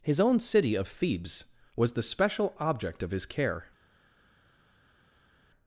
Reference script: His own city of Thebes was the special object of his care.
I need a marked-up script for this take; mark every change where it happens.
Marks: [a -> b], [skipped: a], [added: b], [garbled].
His own city of Thebes was the special object of his care.